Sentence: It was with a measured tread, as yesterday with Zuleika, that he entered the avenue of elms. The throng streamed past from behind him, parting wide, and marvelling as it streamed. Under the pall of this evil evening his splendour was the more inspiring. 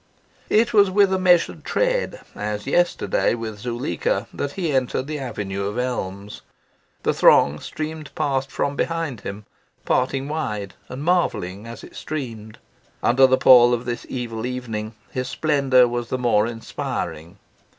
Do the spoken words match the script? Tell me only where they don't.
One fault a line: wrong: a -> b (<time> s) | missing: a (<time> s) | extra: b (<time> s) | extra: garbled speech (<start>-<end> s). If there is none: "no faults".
no faults